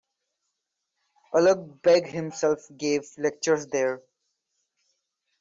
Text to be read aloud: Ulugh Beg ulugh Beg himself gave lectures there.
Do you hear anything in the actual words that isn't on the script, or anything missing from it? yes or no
yes